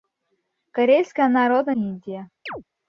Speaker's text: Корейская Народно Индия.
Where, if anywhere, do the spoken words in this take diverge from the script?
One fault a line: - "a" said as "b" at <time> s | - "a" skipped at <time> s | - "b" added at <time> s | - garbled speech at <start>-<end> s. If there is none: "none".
none